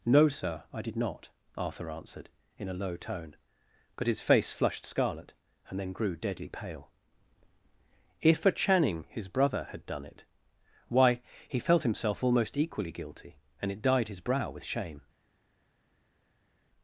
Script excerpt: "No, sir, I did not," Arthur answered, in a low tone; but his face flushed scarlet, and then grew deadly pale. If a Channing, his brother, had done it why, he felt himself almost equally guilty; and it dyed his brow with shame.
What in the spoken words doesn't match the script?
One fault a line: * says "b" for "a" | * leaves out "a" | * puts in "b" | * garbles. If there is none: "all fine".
all fine